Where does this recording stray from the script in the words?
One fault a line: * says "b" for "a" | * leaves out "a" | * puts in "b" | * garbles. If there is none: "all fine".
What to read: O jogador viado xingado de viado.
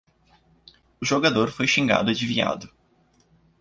* says "foi" for "viado"